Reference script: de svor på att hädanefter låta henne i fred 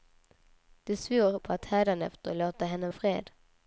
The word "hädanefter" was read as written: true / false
true